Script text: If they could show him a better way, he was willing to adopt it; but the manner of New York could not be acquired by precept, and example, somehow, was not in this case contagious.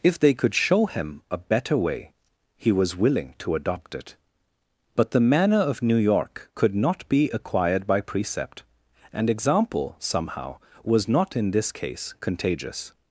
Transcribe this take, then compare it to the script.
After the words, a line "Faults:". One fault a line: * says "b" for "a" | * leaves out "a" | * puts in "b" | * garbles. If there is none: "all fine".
If they could show him a better way, he was willing to adopt it; but the manner of New York could not be acquired by precept, and example, somehow, was not in this case contagious.
Faults:
all fine